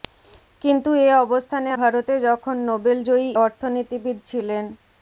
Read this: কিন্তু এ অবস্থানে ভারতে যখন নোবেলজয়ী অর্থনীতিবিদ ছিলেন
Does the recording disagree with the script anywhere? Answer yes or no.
no